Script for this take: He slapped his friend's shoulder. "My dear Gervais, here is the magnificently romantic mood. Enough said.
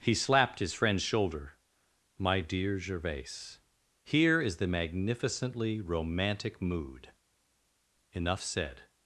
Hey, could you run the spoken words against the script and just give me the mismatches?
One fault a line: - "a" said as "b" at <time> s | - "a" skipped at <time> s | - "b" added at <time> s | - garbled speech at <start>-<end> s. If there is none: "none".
none